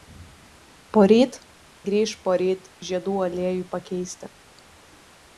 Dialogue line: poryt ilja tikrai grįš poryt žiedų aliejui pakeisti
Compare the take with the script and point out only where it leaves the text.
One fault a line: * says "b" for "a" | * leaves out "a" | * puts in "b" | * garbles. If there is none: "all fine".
* leaves out "ilja tikrai"